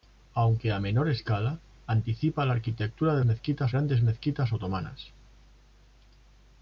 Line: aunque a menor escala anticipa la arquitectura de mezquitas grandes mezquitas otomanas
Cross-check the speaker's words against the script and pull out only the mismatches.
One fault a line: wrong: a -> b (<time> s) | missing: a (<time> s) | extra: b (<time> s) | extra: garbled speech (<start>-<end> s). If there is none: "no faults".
no faults